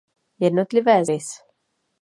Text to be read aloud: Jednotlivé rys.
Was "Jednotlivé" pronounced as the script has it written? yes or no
yes